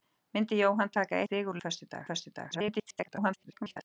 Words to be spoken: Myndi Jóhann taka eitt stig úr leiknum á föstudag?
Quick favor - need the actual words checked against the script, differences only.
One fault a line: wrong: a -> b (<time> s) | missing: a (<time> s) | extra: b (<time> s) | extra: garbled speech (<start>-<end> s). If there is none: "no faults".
missing: eitt (1.2 s)
wrong: leiknum -> föstudag (1.6 s)
extra: garbled speech (2.5-3.8 s)